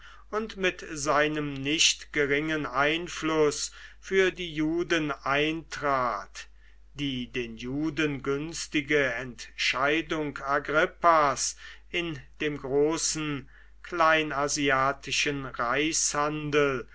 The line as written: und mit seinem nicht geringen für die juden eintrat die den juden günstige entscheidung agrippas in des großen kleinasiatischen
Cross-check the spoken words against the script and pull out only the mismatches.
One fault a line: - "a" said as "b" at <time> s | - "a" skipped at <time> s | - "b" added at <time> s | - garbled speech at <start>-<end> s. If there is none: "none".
- "einfluß" added at 2.6 s
- "des" said as "dem" at 12.4 s